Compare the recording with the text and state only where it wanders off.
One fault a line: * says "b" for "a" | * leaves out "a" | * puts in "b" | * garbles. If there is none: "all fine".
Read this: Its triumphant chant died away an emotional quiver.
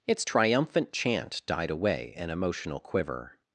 all fine